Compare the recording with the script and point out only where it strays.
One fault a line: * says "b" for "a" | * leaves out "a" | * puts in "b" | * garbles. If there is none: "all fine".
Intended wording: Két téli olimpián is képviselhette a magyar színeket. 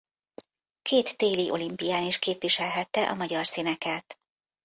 all fine